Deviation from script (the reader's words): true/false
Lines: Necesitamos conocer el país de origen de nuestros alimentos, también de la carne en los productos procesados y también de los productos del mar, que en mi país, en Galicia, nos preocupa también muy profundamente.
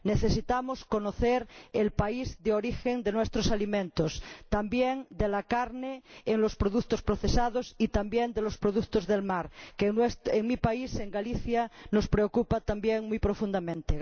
false